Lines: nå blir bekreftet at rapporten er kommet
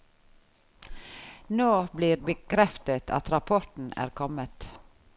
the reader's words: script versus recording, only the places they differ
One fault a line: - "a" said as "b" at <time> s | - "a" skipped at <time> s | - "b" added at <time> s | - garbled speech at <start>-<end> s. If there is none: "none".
none